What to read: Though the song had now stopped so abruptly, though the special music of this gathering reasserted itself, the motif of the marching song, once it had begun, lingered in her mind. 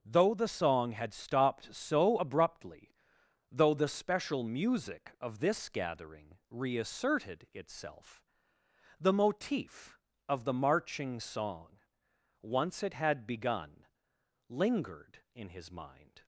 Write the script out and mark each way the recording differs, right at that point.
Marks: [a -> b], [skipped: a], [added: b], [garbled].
Though the song had [skipped: now] stopped so abruptly, though the special music of this gathering reasserted itself, the motif of the marching song, once it had begun, lingered in [her -> his] mind.